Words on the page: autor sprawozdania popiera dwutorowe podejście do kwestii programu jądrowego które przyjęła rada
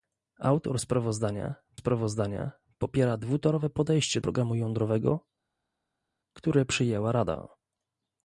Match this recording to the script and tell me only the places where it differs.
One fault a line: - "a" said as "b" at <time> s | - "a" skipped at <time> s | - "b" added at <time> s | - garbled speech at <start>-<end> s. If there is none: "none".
- "sprawozdania" added at 1.7 s
- "do kwestii" skipped at 4.2 s